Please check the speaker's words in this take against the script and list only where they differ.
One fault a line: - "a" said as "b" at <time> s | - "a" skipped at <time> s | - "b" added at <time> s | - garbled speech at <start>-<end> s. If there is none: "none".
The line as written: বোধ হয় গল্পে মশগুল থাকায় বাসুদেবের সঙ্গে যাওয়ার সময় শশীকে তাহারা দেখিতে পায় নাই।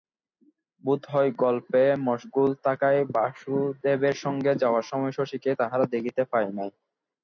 none